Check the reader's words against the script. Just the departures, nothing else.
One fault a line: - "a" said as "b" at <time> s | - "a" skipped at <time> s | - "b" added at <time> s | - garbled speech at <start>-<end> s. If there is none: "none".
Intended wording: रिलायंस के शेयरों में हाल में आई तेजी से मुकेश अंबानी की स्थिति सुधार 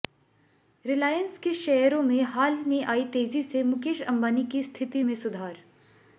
- "में" added at 5.0 s